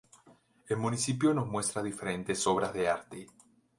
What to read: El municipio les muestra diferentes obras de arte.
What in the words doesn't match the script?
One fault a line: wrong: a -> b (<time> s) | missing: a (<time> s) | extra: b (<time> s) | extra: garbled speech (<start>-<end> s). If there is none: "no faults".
wrong: les -> nos (1.3 s)